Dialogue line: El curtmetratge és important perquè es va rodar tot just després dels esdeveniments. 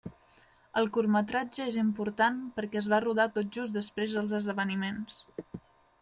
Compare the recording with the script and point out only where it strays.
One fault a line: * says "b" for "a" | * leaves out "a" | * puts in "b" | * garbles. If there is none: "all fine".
all fine